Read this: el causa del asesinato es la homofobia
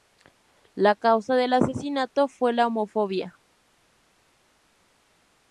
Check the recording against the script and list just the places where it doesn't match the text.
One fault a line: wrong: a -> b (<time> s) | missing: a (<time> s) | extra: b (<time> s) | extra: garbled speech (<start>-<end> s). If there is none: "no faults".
wrong: el -> la (0.7 s)
wrong: es -> fue (2.3 s)